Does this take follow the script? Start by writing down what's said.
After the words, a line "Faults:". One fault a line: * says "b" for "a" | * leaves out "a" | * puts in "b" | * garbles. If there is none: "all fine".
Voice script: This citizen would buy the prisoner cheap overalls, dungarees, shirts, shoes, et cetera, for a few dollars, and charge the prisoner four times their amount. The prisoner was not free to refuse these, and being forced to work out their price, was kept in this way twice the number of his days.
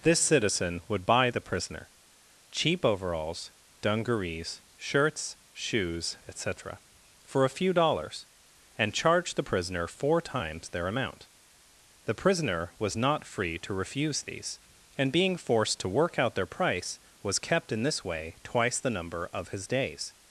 This citizen would buy the prisoner cheap overalls, dungarees, shirts, shoes, et cetera, for a few dollars, and charge the prisoner four times their amount. The prisoner was not free to refuse these, and being forced to work out their price, was kept in this way twice the number of his days.
Faults:
all fine